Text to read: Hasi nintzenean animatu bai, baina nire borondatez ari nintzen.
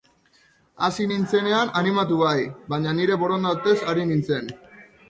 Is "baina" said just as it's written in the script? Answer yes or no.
yes